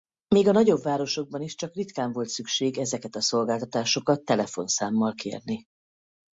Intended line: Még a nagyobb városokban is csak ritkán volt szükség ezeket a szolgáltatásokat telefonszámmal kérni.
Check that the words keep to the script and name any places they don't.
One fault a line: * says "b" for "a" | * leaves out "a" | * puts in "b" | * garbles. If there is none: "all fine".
all fine